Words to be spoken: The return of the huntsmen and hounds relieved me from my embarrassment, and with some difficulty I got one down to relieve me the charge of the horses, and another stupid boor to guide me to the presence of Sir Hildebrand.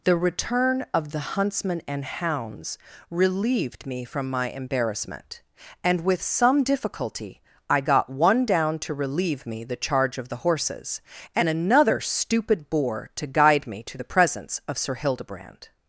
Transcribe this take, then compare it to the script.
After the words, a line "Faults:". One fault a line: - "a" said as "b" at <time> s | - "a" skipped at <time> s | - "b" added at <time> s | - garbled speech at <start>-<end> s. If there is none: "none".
The return of the huntsmen and hounds relieved me from my embarrassment, and with some difficulty I got one down to relieve me the charge of the horses, and another stupid boor to guide me to the presence of Sir Hildebrand.
Faults:
none